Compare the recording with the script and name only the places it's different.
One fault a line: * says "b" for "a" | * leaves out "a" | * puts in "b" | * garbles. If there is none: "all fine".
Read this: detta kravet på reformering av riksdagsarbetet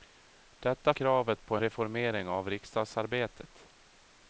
all fine